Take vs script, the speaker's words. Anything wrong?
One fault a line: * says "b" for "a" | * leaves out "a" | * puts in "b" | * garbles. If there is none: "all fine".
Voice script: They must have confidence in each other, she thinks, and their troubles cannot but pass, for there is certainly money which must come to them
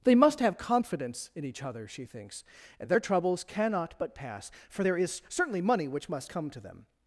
all fine